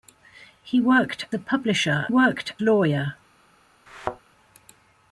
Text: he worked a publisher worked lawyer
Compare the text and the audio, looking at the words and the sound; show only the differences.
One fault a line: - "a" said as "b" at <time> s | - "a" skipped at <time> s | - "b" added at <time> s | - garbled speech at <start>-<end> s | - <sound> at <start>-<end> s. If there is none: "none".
- thud at 3.9-4.2 s